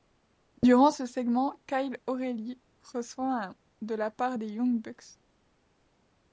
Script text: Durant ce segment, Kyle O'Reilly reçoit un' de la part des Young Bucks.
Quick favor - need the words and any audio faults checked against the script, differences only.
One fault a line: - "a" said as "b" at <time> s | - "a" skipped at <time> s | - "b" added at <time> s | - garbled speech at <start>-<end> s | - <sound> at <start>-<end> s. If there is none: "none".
none